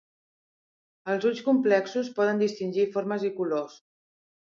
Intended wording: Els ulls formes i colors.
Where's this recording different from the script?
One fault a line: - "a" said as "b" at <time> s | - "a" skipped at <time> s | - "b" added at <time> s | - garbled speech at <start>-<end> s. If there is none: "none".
- "complexos poden distingir" added at 1.5 s